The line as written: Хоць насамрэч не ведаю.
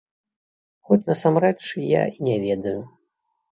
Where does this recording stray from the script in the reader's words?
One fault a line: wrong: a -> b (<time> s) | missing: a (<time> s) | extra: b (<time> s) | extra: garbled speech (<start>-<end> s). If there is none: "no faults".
extra: я і (1.9 s)